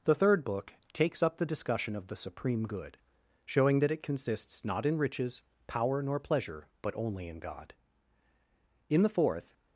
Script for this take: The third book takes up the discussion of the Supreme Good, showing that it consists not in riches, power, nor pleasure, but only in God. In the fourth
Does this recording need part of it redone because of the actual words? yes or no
no